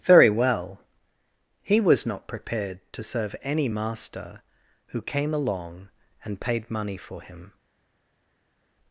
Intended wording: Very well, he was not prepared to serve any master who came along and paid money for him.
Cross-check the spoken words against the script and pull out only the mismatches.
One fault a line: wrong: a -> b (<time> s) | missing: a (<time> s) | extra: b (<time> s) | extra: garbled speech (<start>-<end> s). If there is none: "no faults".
no faults